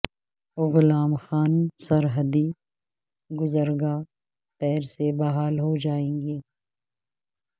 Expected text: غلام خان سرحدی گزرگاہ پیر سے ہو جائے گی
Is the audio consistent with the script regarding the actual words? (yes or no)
no